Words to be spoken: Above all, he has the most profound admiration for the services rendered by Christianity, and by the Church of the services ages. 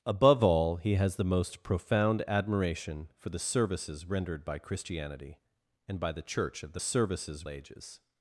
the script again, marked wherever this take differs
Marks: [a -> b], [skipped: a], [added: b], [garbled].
Above all, he has the most profound admiration for the services rendered by Christianity, and by the Church of the services ages.